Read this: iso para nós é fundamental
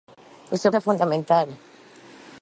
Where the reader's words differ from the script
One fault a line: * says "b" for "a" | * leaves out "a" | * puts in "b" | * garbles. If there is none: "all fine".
* leaves out "para nós"